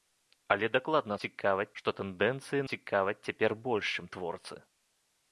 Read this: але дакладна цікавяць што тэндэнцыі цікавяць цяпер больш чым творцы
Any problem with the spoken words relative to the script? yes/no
no